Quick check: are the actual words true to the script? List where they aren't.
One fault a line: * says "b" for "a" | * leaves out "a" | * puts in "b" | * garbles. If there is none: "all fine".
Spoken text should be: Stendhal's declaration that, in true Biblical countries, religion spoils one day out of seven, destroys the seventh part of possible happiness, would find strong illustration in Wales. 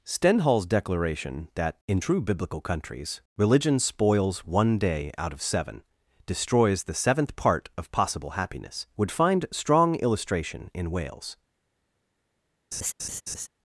all fine